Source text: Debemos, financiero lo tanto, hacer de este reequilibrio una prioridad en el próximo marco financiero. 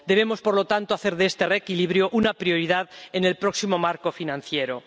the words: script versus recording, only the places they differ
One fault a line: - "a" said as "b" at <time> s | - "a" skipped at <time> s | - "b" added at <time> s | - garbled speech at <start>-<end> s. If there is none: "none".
- "financiero" said as "por" at 0.4 s